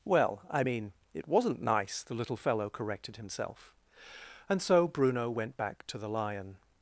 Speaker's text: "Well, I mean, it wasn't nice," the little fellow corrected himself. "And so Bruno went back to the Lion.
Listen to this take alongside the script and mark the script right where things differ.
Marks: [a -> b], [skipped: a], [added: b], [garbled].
"Well, I mean, it wasn't nice," the little fellow corrected himself. "And so Bruno went back to the Lion.